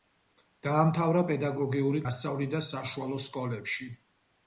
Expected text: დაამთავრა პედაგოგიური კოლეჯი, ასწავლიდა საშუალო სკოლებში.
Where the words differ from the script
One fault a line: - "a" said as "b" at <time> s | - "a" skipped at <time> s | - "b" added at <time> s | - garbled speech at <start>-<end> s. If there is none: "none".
- "კოლეჯი" skipped at 2.0 s